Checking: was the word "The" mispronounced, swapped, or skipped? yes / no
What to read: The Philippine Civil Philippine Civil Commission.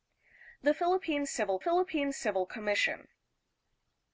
no